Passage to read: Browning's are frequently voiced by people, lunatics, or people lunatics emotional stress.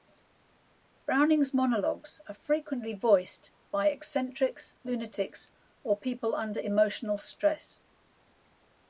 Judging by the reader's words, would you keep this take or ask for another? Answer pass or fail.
fail